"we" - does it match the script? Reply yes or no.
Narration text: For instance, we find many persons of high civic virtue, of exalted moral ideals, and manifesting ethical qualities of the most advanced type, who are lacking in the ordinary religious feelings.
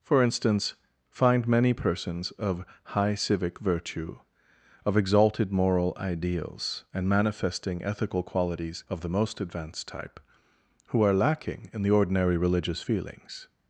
no